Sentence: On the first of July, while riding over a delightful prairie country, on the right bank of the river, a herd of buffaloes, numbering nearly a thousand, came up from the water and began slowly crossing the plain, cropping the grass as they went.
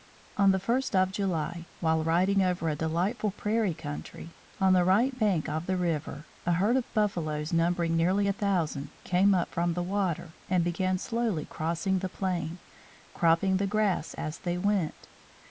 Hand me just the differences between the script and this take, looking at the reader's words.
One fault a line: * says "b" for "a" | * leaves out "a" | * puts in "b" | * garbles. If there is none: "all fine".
all fine